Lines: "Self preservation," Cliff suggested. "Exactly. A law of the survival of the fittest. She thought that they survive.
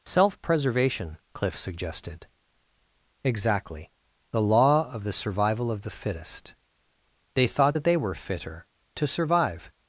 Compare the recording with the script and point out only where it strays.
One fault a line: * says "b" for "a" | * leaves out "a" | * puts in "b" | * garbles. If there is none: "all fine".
* says "The" for "A"
* says "They" for "She"
* puts in "were fitter to"